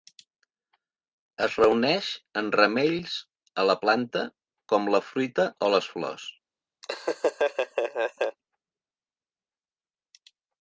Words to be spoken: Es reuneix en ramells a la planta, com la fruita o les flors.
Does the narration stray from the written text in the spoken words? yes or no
no